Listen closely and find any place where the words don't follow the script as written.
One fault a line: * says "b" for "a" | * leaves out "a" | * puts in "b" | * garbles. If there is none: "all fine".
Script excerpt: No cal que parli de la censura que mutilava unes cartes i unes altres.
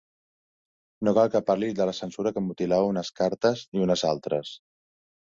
all fine